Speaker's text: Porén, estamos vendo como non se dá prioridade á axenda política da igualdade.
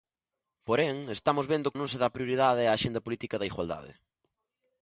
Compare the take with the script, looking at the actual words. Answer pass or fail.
fail